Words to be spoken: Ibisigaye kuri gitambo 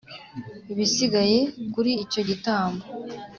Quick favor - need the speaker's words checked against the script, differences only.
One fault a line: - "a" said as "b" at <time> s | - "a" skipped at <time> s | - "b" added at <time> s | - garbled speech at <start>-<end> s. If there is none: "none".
- "icyo" added at 2.0 s